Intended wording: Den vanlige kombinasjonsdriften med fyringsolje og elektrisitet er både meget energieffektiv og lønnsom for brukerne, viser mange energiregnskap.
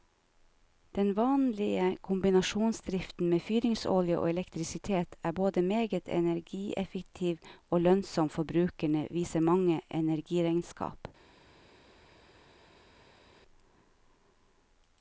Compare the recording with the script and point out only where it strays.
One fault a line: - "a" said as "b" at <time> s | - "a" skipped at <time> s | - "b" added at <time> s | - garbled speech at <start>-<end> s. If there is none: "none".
none